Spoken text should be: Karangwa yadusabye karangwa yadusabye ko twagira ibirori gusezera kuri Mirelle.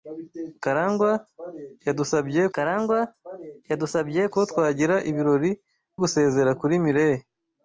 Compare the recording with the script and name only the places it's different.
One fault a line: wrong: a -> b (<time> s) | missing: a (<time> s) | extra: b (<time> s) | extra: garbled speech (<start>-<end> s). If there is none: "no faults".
no faults